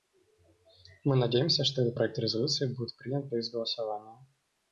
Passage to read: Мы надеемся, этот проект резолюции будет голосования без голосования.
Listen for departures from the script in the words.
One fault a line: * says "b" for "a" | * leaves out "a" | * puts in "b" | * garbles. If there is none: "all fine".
* puts in "что"
* says "принят" for "голосования"